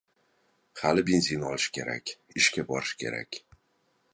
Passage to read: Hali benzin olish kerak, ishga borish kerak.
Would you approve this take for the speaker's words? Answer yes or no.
yes